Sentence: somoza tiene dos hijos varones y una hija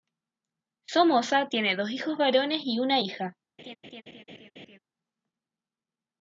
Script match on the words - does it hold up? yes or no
yes